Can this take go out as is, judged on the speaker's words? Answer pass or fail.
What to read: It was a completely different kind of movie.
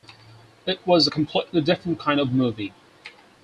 pass